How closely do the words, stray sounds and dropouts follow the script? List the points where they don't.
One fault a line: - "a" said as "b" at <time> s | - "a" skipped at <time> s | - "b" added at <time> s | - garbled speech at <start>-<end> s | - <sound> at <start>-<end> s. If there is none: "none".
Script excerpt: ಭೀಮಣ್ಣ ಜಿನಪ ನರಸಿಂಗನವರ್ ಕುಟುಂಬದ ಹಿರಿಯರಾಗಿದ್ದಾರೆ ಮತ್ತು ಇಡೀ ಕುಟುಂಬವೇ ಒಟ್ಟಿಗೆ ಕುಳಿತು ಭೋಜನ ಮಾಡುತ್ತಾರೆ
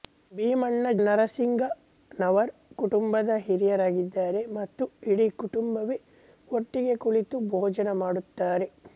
- "ಜಿನಪ" skipped at 0.9 s